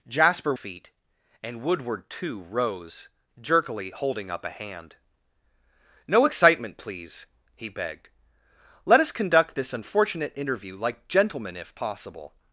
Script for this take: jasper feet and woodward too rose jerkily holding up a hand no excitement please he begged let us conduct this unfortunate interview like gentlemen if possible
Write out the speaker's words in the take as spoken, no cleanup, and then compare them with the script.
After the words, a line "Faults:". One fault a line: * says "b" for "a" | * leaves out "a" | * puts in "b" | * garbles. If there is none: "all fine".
jasper feet and woodward too rose jerkily holding up a hand no excitement please he begged let us conduct this unfortunate interview like gentlemen if possible
Faults:
all fine